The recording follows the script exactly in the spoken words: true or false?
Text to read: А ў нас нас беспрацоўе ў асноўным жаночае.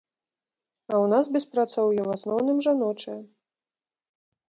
false